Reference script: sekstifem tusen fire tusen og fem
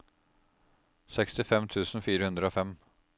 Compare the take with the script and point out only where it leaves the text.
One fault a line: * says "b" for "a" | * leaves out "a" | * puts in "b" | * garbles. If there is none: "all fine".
* says "hundre" for "tusen"